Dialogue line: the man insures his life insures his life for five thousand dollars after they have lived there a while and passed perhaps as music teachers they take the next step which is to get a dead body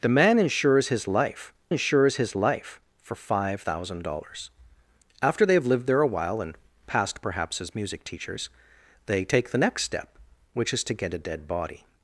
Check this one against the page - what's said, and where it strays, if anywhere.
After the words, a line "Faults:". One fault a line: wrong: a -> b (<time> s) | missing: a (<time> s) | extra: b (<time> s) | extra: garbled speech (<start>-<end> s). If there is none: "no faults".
the man insures his life insures his life for five thousand dollars after they have lived there a while and passed perhaps as music teachers they take the next step which is to get a dead body
Faults:
no faults